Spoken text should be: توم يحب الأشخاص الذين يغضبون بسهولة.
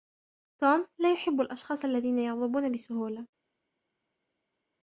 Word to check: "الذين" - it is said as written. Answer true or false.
true